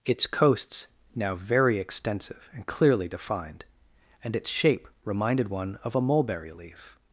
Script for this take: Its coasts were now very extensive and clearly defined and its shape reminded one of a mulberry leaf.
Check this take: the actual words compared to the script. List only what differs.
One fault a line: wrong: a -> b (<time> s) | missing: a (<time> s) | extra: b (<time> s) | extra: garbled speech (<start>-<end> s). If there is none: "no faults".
missing: were (0.9 s)